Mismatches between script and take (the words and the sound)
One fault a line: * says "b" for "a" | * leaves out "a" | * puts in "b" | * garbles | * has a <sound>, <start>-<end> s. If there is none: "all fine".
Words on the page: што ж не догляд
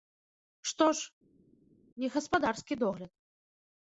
* puts in "гаспадарскі"